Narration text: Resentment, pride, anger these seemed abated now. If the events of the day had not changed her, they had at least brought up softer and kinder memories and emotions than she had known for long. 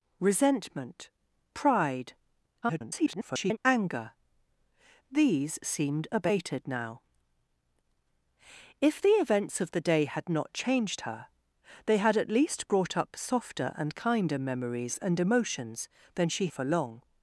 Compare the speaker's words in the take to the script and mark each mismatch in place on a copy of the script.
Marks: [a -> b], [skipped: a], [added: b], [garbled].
Resentment, pride, [garbled] anger these seemed abated now. If the events of the day had not changed her, they had at least brought up softer and kinder memories and emotions than she [skipped: had known] for long.